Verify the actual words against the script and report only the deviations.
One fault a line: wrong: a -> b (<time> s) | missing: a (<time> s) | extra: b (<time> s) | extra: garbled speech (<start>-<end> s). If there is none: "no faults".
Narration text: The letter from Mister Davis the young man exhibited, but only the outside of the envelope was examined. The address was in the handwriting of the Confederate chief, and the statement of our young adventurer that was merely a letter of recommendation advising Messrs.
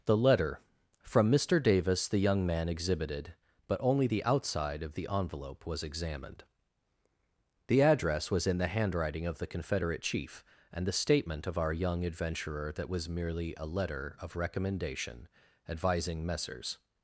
no faults